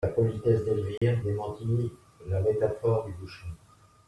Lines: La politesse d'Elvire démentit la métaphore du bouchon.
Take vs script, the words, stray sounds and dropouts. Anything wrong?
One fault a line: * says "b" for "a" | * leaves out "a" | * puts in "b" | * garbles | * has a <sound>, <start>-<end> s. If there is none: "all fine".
* has a dropout, 1.0-1.0 s